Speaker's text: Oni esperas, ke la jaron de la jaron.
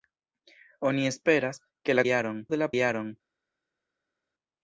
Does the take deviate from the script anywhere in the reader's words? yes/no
no